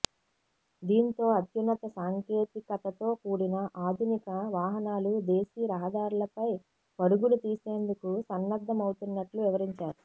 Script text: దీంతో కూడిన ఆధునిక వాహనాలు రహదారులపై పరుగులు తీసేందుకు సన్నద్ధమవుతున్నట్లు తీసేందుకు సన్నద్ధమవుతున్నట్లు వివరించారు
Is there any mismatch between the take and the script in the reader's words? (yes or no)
yes